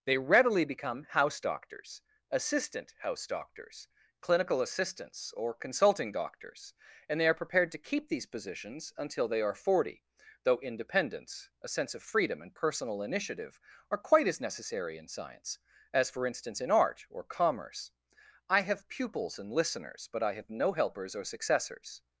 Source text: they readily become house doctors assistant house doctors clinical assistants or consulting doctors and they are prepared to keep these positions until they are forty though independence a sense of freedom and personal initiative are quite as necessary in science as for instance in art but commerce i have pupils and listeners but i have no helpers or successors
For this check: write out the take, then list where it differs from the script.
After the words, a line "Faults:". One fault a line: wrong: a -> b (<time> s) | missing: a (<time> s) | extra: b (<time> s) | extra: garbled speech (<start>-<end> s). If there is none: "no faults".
they readily become house doctors assistant house doctors clinical assistants or consulting doctors and they are prepared to keep these positions until they are forty though independence a sense of freedom and personal initiative are quite as necessary in science as for instance in art or commerce i have pupils and listeners but i have no helpers or successors
Faults:
wrong: but -> or (17.1 s)